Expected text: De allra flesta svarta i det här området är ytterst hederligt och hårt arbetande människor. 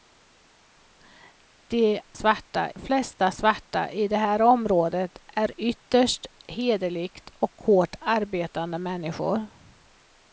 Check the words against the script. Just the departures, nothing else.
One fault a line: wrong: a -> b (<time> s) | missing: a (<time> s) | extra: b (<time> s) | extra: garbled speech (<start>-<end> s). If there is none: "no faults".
wrong: allra -> svarta (2.1 s)